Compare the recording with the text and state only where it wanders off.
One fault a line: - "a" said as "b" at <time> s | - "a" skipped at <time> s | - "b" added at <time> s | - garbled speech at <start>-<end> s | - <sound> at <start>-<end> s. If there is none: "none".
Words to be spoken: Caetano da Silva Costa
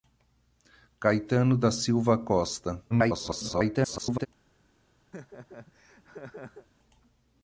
- garbled speech at 2.9-4.3 s
- laugh at 5.1-6.7 s